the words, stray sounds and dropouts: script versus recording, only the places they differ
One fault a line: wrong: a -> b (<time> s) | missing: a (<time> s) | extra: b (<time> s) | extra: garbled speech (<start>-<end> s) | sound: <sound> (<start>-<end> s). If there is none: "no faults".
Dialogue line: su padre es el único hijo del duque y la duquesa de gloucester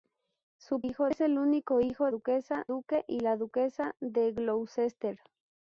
wrong: padre -> hijo (0.8 s)
wrong: del -> duquesa (2.1 s)